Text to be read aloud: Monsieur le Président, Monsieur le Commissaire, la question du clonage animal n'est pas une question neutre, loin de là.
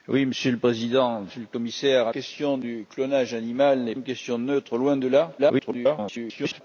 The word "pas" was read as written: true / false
false